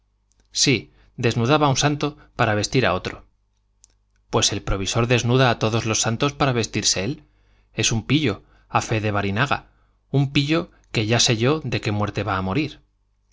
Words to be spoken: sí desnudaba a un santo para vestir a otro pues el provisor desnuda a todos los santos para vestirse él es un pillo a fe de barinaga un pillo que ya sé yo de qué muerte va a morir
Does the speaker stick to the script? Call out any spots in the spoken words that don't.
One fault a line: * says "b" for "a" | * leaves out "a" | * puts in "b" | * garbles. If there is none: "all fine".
all fine